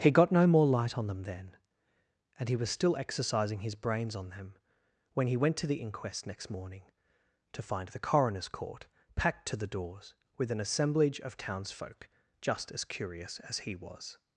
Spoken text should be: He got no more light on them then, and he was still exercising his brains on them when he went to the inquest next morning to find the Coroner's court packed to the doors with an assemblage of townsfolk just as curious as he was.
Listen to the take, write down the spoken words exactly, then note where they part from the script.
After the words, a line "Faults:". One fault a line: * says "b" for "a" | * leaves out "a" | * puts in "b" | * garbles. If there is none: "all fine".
He got no more light on them then, and he was still exercising his brains on them when he went to the inquest next morning to find the Coroner's court packed to the doors with an assemblage of townsfolk just as curious as he was.
Faults:
all fine